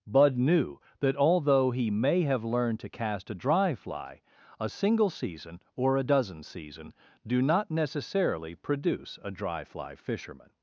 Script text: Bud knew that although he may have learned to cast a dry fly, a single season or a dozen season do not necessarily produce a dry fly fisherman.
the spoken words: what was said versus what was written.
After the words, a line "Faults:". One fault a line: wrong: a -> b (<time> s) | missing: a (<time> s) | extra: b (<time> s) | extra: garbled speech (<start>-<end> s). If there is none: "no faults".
Bud knew that although he may have learned to cast a dry fly, a single season or a dozen season do not necessarily produce a dry fly fisherman.
Faults:
no faults